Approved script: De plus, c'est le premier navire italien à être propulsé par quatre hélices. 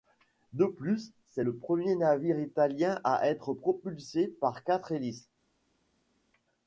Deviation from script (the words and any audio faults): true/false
false